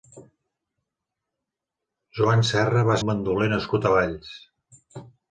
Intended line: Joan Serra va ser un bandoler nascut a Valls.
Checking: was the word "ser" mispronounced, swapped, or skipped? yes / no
yes